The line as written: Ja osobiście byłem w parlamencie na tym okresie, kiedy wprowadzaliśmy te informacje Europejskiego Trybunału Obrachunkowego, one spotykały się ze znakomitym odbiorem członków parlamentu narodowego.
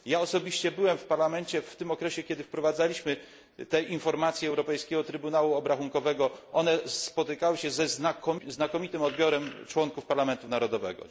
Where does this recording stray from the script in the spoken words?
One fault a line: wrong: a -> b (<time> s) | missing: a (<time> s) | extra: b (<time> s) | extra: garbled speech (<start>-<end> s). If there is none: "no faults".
wrong: na -> w (1.6 s)